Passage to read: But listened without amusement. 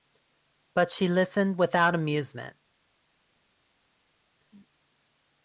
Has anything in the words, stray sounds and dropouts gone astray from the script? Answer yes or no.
yes